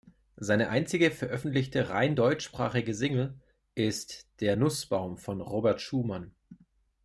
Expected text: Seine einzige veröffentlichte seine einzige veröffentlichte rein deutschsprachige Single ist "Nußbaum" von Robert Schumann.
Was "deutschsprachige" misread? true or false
false